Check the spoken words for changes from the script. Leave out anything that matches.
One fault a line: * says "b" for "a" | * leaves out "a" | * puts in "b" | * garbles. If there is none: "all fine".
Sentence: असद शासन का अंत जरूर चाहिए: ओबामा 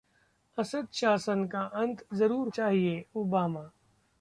all fine